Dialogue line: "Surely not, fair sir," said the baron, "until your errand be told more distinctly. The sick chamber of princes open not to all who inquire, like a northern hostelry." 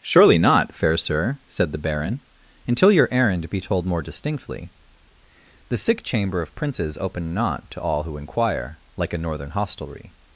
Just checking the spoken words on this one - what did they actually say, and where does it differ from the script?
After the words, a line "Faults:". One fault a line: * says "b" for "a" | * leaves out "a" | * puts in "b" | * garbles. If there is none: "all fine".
"Surely not, fair sir," said the baron, "until your errand be told more distinctly. The sick chamber of princes open not to all who inquire, like a northern hostelry."
Faults:
all fine